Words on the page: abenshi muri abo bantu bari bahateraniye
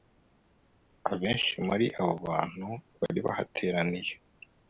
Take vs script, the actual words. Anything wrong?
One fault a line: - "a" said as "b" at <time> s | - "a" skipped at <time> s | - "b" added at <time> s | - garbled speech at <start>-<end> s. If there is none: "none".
none